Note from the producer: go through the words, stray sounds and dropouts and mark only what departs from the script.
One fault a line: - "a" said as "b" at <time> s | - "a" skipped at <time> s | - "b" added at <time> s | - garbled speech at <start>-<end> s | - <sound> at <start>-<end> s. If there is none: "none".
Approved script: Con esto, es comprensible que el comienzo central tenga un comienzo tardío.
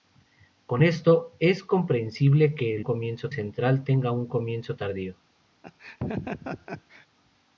- laugh at 5.6-7.1 s